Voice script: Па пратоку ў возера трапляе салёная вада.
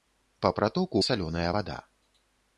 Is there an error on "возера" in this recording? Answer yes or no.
yes